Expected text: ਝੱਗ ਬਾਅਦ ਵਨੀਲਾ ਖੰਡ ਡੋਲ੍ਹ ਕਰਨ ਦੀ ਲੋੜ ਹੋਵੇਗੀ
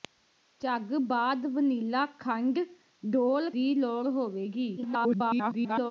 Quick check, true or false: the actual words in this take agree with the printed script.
false